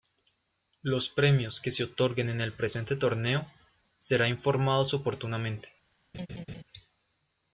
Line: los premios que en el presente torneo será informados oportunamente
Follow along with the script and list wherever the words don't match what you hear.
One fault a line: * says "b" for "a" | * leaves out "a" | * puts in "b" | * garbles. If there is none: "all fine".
* puts in "se otorguen"